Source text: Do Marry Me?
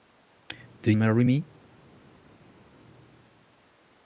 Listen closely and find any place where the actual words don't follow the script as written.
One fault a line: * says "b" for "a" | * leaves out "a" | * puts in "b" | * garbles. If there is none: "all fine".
all fine